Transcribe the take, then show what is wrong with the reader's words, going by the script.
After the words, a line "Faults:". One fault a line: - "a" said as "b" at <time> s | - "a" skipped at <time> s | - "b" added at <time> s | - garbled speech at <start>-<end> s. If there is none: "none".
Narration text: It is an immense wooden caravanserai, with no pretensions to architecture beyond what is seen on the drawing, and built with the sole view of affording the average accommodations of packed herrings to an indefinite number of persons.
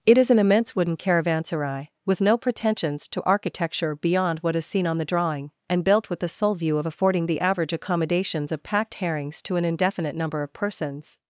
It is an immense wooden caravanserai, with no pretensions to architecture beyond what is seen on the drawing, and built with the sole view of affording the average accommodations of packed herrings to an indefinite number of persons.
Faults:
none